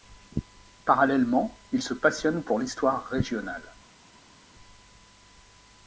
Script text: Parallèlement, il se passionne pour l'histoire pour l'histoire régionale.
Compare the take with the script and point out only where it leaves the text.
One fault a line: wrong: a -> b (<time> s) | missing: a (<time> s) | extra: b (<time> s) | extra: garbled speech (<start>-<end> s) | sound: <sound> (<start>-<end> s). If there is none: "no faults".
missing: pour l'histoire (3.0 s)